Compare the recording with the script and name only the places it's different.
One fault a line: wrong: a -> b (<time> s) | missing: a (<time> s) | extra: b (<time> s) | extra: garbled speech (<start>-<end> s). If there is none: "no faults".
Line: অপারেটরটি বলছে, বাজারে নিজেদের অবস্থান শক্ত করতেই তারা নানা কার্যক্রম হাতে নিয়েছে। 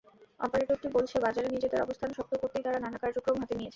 no faults